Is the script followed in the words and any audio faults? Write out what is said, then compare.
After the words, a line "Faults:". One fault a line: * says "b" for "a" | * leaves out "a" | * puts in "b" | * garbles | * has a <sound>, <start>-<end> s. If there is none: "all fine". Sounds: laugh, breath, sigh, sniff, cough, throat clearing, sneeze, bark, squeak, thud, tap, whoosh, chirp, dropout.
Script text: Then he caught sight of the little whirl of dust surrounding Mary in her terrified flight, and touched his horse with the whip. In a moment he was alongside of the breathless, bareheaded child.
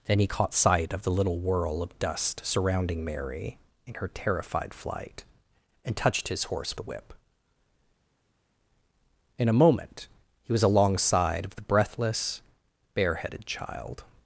Then he caught sight of the little whirl of dust surrounding Mary in her terrified flight, and touched his horse the whip. In a moment he was alongside of the breathless, bareheaded child.
Faults:
* leaves out "with"